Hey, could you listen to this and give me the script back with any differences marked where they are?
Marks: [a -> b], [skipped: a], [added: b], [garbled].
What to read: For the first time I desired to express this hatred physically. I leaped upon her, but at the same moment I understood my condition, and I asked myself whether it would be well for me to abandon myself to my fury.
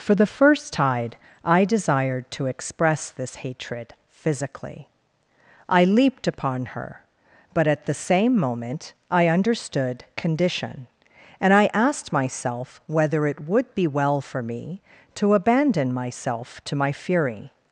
For the first [time -> tide] I desired to express this hatred physically. I leaped upon her, but at the same moment I understood [skipped: my] condition, and I asked myself whether it would be well for me to abandon myself to my fury.